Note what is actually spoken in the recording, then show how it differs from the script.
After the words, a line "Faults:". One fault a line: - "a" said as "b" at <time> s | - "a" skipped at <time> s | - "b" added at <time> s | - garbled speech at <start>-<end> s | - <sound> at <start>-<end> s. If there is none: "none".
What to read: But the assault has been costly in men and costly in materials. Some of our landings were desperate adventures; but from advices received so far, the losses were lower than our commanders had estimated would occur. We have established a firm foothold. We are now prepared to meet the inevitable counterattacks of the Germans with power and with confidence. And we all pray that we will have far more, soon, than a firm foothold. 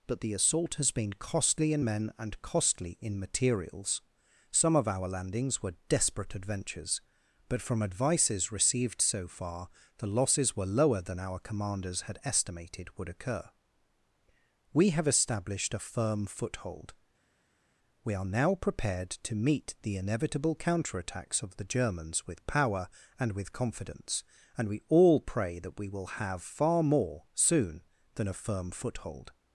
But the assault has been costly in men and costly in materials. Some of our landings were desperate adventures; but from advices received so far, the losses were lower than our commanders had estimated would occur. We have established a firm foothold. We are now prepared to meet the inevitable counterattacks of the Germans with power and with confidence. And we all pray that we will have far more, soon, than a firm foothold.
Faults:
none